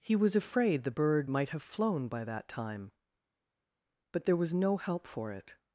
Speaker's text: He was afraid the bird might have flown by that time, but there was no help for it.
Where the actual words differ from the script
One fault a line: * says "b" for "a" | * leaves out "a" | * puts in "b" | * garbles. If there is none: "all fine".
all fine